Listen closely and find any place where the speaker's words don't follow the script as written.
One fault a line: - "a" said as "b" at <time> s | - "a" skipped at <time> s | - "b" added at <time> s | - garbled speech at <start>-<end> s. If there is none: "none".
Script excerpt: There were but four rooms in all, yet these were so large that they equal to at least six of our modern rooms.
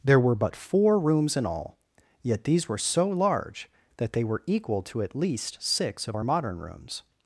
- "were" added at 4.2 s